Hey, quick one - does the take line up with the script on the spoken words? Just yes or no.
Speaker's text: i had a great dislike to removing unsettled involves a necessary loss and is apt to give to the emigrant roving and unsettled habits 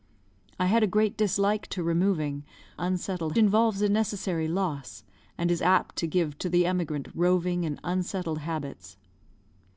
yes